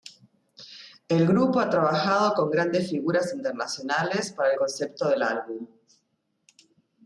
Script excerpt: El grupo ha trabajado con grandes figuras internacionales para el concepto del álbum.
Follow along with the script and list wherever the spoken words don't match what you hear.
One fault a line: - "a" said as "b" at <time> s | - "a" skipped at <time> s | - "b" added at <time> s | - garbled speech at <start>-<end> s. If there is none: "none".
none